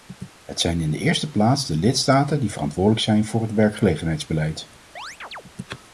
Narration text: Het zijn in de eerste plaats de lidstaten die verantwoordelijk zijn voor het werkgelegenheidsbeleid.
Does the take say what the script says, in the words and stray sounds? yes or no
no